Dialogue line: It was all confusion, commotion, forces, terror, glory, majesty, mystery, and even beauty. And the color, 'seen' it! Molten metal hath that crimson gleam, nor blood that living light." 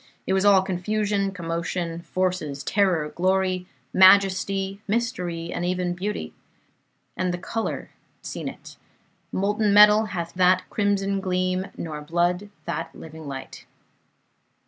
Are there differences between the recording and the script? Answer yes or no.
no